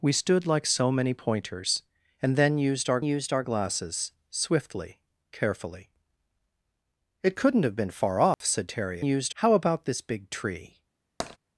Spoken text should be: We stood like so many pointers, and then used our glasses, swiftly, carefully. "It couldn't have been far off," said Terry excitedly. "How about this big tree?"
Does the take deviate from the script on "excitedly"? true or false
true